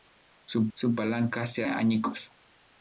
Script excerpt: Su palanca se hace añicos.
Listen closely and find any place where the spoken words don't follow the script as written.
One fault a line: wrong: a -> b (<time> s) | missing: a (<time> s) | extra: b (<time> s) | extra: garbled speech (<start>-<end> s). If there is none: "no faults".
extra: su (0.7 s)
missing: hace (1.6 s)